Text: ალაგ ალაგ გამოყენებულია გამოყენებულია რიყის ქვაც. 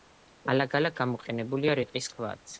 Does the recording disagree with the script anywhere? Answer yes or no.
yes